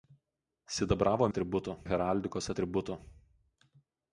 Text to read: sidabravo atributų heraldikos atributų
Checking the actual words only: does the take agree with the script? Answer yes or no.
yes